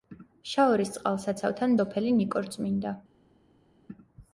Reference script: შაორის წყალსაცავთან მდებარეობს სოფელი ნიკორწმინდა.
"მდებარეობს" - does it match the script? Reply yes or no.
no